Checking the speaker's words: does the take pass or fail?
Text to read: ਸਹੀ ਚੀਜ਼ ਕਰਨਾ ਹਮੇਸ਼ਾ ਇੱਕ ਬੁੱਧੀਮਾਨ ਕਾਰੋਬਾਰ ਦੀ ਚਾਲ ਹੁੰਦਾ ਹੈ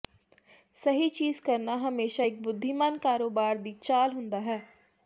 pass